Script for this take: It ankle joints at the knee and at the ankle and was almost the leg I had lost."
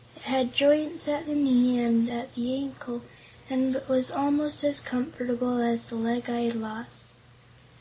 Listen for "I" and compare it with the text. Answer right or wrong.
right